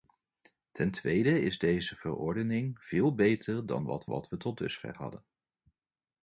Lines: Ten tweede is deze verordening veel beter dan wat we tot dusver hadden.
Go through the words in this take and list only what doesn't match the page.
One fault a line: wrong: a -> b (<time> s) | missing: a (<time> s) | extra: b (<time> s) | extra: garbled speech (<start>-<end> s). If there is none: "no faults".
extra: wat (4.0 s)